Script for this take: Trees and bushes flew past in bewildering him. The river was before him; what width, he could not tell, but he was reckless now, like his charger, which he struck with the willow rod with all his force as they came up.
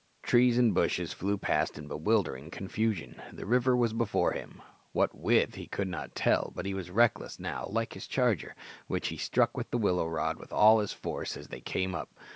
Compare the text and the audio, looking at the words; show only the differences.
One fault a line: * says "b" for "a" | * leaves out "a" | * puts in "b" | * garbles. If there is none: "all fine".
* says "confusion" for "him"